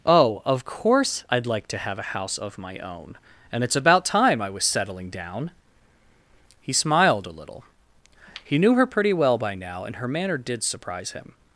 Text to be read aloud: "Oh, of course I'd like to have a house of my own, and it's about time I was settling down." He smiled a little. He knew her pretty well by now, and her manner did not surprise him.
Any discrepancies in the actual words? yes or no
yes